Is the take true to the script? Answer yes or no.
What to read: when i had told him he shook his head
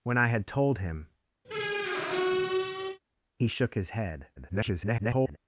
no